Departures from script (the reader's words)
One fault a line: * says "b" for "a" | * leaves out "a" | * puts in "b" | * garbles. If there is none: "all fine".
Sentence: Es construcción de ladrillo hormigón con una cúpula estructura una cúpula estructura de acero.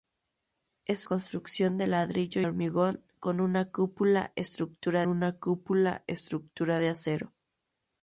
all fine